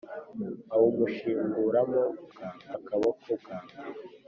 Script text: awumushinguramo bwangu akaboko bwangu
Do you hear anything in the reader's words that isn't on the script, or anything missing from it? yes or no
no